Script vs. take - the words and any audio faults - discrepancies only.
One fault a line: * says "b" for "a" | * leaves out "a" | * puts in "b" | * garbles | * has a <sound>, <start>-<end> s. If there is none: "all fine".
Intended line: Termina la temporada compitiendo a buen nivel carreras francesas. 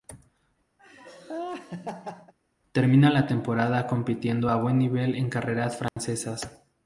* has a laugh, 0.8-2.3 s
* puts in "en"
* has a dropout, 5.9-6.0 s